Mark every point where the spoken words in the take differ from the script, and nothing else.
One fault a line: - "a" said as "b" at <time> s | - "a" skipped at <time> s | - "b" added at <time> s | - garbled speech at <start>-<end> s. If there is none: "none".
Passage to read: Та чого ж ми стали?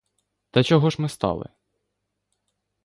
none